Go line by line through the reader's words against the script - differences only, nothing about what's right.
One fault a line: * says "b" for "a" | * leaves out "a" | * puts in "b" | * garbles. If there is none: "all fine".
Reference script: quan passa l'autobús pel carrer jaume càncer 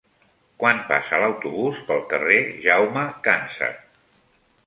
all fine